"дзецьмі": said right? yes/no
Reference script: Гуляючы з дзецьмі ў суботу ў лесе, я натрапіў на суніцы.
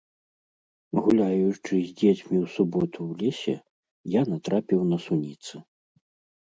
yes